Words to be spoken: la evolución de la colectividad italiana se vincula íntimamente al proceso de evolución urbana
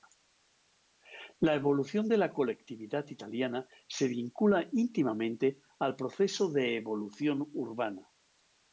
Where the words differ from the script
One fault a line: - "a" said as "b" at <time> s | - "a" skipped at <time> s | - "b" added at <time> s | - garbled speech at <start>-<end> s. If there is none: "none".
none